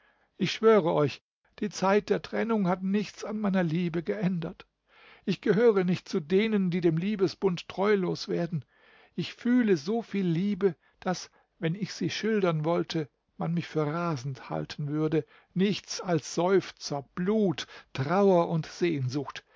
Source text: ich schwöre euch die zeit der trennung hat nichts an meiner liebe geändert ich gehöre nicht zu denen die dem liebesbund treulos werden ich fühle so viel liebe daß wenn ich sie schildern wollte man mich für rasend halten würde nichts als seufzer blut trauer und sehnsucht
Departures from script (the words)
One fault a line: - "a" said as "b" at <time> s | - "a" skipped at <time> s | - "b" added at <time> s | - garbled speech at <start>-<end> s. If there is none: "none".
none